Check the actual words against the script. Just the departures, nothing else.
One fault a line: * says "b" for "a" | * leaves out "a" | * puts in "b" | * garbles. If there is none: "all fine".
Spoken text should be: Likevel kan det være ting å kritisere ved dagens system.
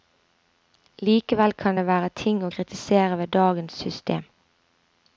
all fine